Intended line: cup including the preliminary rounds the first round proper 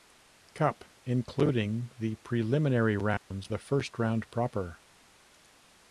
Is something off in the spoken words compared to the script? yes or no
no